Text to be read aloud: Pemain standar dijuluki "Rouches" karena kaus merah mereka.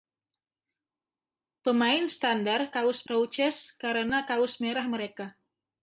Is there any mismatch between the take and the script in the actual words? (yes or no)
yes